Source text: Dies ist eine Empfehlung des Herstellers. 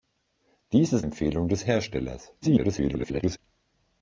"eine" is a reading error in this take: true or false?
true